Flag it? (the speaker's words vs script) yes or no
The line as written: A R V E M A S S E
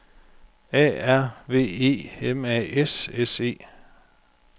no